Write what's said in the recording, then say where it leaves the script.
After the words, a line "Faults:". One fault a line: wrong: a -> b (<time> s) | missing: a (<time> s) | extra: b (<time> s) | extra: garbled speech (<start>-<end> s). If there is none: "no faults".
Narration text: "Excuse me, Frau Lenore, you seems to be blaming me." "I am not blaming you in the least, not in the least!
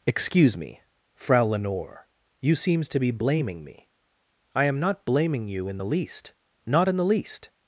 "Excuse me, Frau Lenore, you seems to be blaming me." "I am not blaming you in the least, not in the least!
Faults:
no faults